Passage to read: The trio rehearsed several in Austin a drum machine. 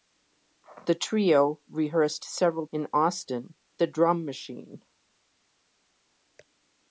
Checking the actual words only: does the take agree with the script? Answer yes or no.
yes